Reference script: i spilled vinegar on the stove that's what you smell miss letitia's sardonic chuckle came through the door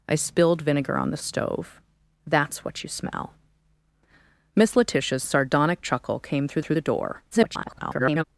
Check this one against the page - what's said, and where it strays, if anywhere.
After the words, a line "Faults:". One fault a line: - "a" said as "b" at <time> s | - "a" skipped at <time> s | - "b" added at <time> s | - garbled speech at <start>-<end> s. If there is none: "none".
i spilled vinegar on the stove that's what you smell miss letitia's sardonic chuckle came through through the door [garbled]
Faults:
- "through" added at 6.6 s
- garbled speech at 7.3-8.2 s